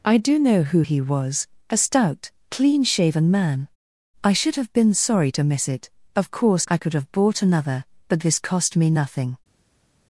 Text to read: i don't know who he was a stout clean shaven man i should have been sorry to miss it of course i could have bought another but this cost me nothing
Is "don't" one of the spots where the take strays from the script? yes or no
yes